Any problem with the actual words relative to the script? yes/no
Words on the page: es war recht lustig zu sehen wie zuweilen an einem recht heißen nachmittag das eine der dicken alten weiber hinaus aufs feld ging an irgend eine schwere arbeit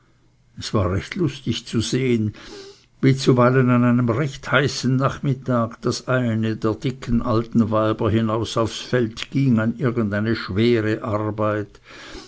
no